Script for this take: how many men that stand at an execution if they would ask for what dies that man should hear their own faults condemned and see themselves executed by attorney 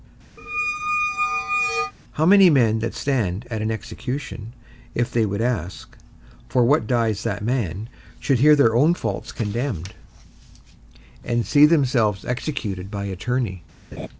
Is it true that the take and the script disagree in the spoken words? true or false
false